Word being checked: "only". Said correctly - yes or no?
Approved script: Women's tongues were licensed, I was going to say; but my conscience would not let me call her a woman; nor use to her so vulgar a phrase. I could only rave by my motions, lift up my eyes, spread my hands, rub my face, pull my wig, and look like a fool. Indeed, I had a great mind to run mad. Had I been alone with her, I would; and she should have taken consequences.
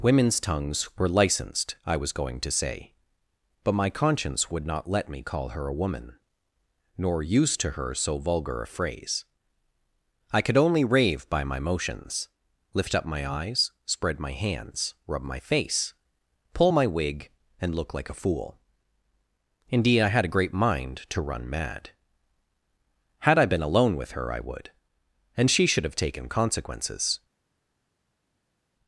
yes